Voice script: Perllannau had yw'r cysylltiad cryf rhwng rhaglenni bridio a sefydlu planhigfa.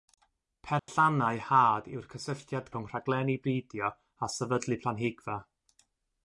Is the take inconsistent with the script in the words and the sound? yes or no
yes